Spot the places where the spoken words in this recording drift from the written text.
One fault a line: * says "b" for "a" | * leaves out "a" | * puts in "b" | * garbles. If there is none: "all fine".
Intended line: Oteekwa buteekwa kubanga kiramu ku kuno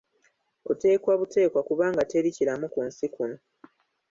* puts in "teri"
* puts in "nsi"